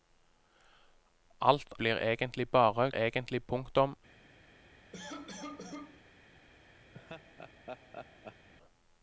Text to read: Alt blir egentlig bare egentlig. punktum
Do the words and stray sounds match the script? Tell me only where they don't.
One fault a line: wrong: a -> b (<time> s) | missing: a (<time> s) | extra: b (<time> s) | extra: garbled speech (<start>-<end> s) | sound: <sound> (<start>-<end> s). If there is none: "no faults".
sound: cough (4.9-6.0 s)
sound: laugh (6.9-8.5 s)